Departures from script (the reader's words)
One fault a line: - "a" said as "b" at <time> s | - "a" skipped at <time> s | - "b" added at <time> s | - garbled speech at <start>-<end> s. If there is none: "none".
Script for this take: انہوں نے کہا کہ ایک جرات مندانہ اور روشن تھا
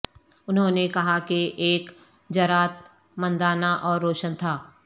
none